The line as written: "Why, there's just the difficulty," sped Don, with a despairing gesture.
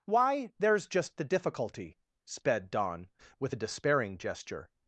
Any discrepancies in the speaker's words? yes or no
no